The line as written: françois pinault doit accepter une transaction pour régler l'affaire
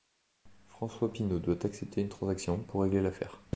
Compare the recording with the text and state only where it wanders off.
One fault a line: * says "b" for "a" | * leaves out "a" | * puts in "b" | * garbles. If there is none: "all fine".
all fine